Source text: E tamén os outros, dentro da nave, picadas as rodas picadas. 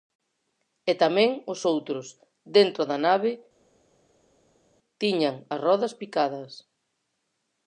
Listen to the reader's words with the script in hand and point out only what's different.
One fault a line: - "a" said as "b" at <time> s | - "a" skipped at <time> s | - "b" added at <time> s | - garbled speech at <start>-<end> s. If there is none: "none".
- "picadas" said as "tiñan" at 5.0 s